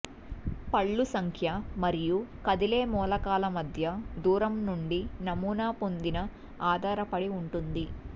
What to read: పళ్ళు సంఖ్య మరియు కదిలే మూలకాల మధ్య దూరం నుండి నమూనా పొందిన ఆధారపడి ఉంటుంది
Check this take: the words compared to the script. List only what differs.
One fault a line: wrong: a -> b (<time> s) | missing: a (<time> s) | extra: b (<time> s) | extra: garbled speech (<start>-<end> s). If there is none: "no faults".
no faults